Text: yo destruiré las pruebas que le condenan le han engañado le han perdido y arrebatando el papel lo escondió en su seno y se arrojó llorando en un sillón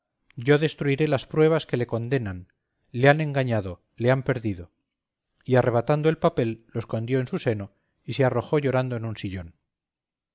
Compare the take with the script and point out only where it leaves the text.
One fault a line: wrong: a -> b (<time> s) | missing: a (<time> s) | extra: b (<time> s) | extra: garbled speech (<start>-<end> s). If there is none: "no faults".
no faults